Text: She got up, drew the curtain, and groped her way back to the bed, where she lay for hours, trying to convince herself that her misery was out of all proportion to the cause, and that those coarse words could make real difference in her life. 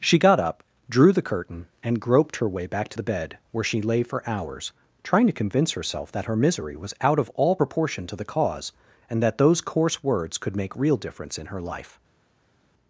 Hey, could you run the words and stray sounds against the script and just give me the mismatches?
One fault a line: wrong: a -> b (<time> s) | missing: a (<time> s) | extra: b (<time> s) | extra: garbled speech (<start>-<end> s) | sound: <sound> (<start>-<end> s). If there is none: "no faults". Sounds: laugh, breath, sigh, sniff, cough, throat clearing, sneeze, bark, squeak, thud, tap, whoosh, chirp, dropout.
no faults